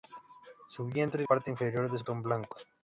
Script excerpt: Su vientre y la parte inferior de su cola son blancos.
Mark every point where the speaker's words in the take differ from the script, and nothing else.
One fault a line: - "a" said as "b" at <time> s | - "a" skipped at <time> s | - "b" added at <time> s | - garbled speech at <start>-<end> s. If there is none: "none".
- "la" skipped at 1.3 s
- "cola" skipped at 2.1 s